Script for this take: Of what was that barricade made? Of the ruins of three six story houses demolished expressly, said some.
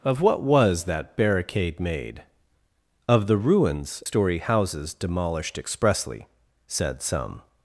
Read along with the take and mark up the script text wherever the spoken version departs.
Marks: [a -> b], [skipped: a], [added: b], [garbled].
Of what was that barricade made? Of the ruins [skipped: of three six] story houses demolished expressly, said some.